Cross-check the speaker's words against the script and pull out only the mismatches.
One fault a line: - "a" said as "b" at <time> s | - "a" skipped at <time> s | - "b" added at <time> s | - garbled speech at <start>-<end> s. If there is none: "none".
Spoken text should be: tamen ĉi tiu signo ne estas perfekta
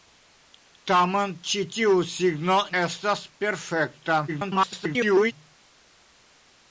- "ne" skipped at 2.6 s
- garbled speech at 4.3-5.3 s